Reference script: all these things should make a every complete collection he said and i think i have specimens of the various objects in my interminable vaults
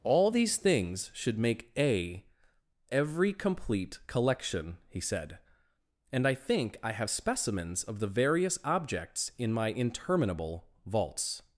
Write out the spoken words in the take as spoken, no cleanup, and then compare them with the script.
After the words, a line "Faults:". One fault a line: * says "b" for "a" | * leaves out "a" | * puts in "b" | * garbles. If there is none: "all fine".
all these things should make a every complete collection he said and i think i have specimens of the various objects in my interminable vaults
Faults:
all fine